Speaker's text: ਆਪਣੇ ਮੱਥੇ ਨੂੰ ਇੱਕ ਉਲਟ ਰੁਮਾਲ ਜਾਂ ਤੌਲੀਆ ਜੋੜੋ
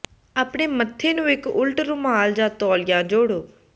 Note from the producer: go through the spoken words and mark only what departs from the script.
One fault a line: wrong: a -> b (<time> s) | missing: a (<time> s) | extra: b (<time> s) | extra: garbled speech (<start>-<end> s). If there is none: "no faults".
no faults